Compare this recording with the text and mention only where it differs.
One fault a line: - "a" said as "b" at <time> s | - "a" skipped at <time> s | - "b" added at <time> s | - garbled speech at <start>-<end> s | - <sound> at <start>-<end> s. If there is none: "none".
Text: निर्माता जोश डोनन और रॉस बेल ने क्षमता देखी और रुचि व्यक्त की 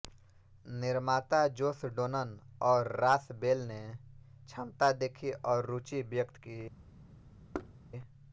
- thud at 7.5-7.8 s